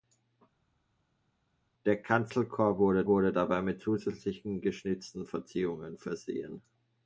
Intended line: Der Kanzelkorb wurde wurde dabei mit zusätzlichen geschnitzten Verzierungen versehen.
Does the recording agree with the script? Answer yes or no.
yes